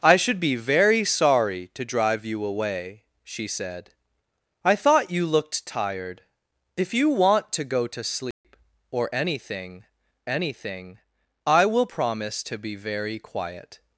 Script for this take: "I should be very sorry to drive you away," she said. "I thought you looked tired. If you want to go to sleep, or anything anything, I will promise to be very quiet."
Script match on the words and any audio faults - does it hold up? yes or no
no